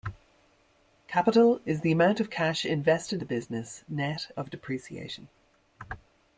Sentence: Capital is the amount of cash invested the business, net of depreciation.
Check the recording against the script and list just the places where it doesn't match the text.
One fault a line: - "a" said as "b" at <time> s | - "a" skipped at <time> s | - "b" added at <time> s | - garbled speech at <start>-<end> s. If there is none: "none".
none